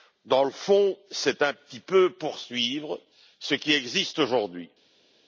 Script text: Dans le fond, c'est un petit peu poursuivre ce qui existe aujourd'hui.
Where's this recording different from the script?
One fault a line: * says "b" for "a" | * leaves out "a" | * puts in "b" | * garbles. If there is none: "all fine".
all fine